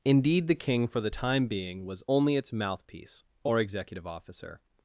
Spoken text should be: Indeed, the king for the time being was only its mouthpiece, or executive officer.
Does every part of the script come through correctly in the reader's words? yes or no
yes